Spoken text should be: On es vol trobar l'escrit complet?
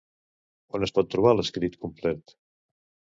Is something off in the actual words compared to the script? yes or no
yes